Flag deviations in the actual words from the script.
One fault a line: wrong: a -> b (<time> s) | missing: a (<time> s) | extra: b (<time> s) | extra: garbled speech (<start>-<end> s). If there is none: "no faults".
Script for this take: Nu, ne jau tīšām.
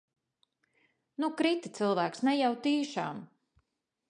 extra: krita cilvēks (1.4 s)